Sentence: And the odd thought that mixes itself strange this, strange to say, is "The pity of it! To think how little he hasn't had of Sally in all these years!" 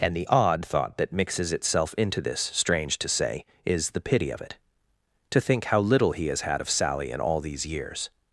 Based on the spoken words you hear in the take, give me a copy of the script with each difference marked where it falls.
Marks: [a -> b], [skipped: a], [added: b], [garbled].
And the odd thought that mixes itself [strange -> into] this, strange to say, is "The pity of it! To think how little he [hasn't -> has] had of Sally in all these years!"